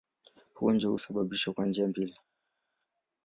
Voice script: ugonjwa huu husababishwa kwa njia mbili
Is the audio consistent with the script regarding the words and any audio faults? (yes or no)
yes